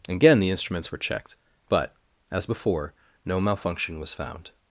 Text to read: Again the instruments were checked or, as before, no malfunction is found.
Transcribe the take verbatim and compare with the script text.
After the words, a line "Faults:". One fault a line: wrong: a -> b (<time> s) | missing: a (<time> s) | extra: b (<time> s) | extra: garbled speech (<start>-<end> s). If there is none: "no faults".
Again the instruments were checked but, as before, no malfunction was found.
Faults:
wrong: or -> but (1.7 s)
wrong: is -> was (4.0 s)